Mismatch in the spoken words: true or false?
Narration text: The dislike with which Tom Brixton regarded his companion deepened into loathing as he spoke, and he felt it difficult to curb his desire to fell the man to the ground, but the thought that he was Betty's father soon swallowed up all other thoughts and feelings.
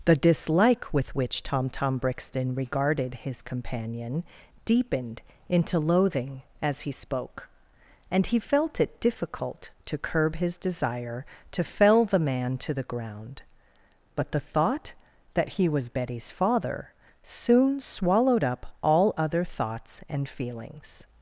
true